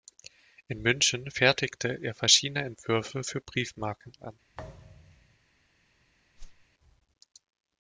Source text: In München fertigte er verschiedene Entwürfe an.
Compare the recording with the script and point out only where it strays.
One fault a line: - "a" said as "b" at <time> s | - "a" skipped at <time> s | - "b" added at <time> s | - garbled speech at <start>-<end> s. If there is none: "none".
- "für Briefmarken" added at 3.2 s